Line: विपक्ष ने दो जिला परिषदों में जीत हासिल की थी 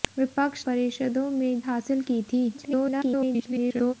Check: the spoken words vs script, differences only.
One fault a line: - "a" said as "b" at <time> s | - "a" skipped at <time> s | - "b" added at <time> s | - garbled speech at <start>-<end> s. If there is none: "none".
- "ने दो जिला" skipped at 0.7 s
- "जीत" skipped at 1.6 s
- garbled speech at 2.5-3.9 s